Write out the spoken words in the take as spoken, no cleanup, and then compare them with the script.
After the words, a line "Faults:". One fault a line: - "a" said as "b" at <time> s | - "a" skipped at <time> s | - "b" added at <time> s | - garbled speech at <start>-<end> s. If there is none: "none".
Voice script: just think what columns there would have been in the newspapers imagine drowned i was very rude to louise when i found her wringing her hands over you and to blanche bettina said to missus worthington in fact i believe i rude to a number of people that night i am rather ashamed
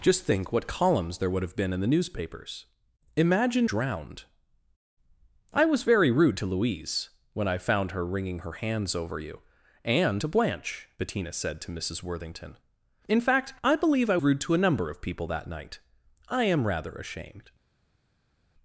just think what columns there would have been in the newspapers imagine drowned i was very rude to louise when i found her wringing her hands over you and to blanche bettina said to missus worthington in fact i believe i rude to a number of people that night i am rather ashamed
Faults:
none